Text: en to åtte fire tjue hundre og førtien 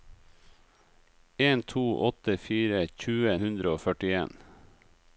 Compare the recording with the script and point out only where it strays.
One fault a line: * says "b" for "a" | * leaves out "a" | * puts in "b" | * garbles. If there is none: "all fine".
all fine